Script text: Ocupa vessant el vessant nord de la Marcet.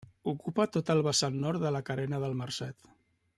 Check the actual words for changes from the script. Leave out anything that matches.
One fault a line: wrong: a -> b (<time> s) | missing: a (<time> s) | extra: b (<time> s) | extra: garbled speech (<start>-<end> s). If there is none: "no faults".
wrong: vessant -> tot (0.8 s)
extra: Carena del (1.9 s)